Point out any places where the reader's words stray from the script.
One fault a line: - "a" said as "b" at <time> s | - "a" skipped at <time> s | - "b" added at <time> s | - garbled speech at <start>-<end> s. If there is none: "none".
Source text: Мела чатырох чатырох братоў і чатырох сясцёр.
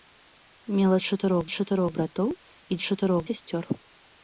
none